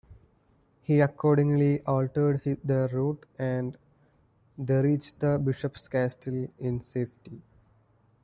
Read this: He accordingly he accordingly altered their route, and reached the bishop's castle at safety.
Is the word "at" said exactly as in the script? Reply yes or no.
no